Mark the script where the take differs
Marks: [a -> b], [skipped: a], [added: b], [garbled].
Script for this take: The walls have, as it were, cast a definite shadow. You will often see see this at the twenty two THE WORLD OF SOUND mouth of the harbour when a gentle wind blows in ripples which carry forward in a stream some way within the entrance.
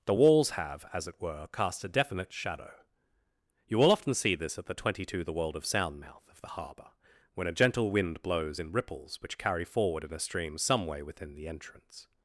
The walls have, as it were, cast a definite shadow. You will often see [skipped: see] this at the twenty two THE WORLD OF SOUND mouth of the harbour when a gentle wind blows in ripples which carry forward in a stream some way within the entrance.